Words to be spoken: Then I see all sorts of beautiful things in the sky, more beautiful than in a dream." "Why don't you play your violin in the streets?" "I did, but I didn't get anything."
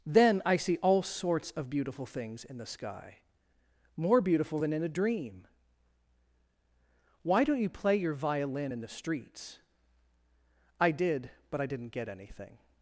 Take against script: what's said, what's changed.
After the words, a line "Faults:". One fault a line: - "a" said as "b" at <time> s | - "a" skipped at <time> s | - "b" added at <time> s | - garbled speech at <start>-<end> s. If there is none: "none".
Then I see all sorts of beautiful things in the sky, more beautiful than in a dream." "Why don't you play your violin in the streets?" "I did, but I didn't get anything."
Faults:
none